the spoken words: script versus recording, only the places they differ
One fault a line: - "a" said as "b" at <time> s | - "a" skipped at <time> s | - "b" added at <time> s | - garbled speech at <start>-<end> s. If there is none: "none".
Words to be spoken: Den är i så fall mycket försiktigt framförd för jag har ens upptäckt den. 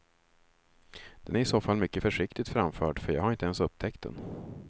- "inte" added at 3.3 s